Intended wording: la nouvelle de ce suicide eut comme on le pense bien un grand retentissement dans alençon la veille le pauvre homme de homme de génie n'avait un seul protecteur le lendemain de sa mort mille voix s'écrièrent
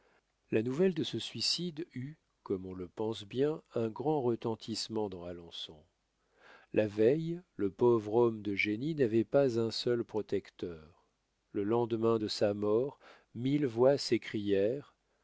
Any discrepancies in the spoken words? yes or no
yes